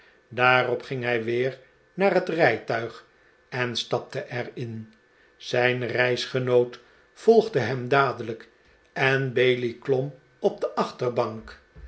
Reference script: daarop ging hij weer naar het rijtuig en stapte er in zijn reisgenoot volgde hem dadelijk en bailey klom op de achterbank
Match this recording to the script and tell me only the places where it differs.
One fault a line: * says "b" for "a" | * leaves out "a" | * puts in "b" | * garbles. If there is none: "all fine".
all fine